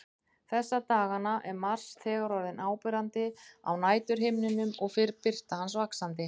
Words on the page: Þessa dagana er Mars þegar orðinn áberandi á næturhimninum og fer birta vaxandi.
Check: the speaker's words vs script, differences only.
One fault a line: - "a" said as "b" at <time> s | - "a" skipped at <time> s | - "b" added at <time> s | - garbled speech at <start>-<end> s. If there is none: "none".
- "hans" added at 5.6 s